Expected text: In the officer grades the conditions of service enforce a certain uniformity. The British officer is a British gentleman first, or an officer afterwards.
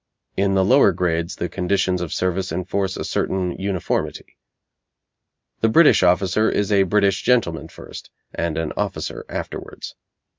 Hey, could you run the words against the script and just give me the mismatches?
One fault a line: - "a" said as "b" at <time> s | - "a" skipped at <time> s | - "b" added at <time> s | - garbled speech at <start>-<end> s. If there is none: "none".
- "officer" said as "lower" at 0.7 s
- "or" said as "and" at 8.3 s